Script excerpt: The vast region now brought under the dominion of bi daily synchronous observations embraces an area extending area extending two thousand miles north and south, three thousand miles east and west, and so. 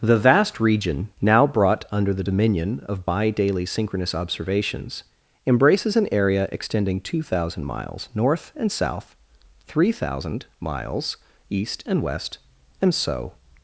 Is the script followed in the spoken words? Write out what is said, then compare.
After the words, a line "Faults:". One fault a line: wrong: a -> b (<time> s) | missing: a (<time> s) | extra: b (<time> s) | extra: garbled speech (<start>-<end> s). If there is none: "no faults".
The vast region now brought under the dominion of bi daily synchronous observations embraces an area extending two thousand miles north and south, three thousand miles east and west, and so.
Faults:
missing: area extending (7.0 s)